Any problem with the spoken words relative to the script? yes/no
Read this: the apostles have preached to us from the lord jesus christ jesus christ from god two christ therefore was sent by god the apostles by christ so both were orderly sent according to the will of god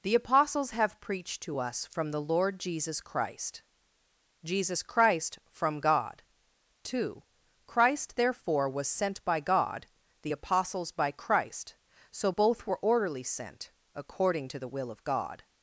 no